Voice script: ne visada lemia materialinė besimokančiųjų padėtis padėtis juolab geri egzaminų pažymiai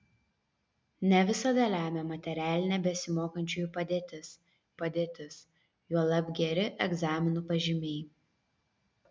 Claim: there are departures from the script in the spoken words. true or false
false